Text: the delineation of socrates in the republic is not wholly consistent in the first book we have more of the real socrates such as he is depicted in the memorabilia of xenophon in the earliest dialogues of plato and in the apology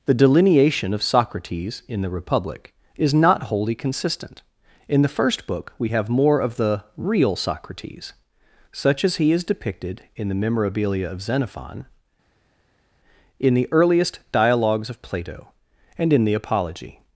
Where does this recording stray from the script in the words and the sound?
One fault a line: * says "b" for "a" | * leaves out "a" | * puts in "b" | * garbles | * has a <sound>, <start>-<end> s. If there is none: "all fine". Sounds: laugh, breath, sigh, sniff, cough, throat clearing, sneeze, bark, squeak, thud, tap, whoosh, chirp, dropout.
all fine